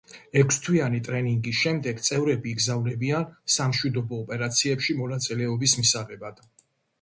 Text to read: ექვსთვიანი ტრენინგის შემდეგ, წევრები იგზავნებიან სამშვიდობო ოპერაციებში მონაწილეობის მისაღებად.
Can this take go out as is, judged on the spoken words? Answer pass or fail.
pass